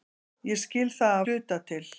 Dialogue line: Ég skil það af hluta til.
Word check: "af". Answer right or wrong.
wrong